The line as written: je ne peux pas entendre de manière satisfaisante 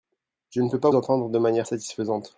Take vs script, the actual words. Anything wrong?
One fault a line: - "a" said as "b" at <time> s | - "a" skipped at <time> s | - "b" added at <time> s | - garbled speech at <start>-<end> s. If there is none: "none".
none